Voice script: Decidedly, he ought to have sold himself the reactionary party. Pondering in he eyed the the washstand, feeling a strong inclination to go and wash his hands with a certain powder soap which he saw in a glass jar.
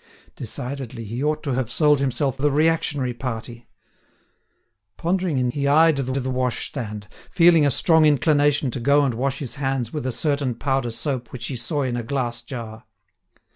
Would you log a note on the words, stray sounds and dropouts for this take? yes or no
no